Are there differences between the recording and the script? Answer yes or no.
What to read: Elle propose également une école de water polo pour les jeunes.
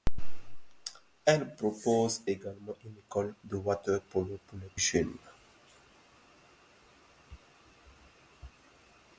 no